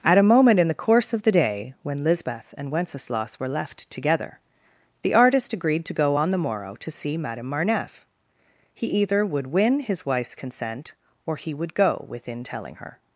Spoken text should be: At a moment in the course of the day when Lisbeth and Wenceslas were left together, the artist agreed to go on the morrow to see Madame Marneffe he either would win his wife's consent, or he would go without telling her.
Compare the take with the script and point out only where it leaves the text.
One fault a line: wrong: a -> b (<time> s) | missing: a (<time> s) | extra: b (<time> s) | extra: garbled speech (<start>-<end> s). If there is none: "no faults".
wrong: without -> within (12.1 s)